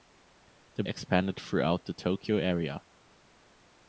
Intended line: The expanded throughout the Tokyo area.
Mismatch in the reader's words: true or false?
false